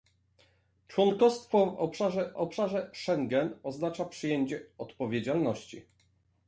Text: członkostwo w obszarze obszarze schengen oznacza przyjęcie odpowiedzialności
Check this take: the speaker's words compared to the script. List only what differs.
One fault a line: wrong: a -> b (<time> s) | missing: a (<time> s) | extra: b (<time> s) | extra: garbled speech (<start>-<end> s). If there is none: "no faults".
no faults